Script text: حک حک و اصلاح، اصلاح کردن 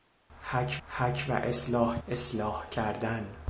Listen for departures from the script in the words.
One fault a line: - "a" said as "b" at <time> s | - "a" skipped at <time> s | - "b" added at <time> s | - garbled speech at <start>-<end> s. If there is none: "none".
none